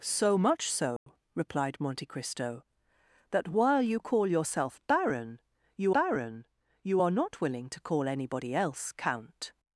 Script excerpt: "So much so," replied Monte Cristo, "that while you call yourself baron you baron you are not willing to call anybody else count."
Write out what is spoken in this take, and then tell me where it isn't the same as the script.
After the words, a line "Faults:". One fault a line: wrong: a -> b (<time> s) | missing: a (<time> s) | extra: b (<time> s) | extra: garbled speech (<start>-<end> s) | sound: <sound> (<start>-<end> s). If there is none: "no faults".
"So much so," replied Monte Cristo, "that while you call yourself baron you baron you are not willing to call anybody else count."
Faults:
sound: dropout (1.0-1.1 s)